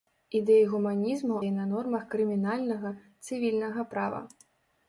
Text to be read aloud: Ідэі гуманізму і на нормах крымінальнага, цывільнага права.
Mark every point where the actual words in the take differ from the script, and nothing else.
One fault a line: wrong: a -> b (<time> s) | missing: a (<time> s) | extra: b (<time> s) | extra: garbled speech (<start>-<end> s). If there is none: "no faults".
no faults